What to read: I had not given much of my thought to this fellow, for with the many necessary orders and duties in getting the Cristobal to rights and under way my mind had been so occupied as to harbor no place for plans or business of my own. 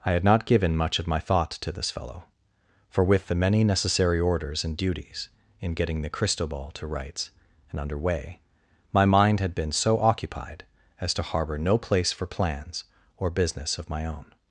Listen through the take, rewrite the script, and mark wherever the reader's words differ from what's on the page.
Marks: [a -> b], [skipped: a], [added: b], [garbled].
I had not given much of my thought to this fellow, for with the many necessary orders and duties in getting the Cristobal to rights and under way my mind had been so occupied as to harbor no place for plans or business of my own.